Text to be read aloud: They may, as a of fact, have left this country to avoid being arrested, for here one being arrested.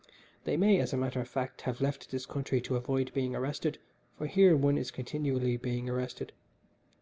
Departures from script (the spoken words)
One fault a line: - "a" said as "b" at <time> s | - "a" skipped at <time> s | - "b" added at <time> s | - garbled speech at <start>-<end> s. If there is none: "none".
- "matter" added at 1.0 s
- "is continually" added at 4.8 s